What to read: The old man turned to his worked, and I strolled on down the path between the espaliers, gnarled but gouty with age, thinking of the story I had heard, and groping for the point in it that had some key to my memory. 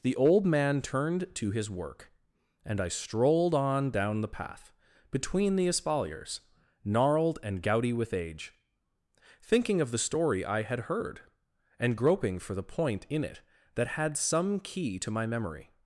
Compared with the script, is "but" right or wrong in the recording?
wrong